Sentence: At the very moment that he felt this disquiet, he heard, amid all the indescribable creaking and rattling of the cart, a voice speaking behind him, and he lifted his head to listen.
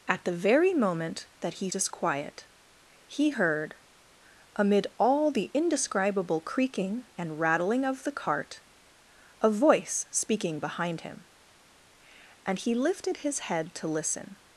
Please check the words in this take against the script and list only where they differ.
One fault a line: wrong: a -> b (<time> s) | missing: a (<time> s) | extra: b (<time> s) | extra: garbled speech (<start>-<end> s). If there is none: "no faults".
missing: felt this (1.7 s)